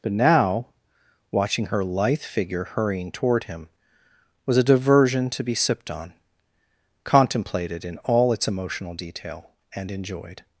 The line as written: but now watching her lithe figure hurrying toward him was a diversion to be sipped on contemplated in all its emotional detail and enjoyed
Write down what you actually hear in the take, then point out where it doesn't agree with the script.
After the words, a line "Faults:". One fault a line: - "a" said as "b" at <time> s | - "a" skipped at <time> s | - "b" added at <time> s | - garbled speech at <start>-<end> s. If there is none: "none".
but now watching her lithe figure hurrying toward him was a diversion to be sipped on contemplated in all its emotional detail and enjoyed
Faults:
none